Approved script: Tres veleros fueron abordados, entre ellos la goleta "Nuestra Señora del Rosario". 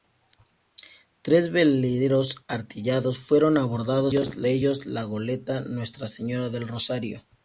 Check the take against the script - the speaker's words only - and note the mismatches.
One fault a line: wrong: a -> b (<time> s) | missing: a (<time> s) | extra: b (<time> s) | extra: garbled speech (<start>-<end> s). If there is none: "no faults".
extra: artillados (2.5 s)